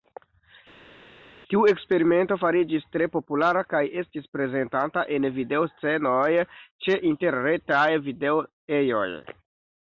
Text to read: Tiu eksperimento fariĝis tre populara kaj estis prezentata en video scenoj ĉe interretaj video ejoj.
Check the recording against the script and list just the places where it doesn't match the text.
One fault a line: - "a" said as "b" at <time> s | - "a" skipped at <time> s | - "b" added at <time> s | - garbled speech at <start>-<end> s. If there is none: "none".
none